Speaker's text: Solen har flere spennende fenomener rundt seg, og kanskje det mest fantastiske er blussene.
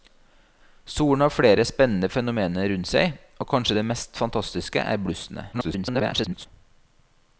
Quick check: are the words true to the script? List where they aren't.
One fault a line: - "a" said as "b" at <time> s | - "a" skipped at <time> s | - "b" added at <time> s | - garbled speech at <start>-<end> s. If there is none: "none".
- garbled speech at 5.5-6.5 s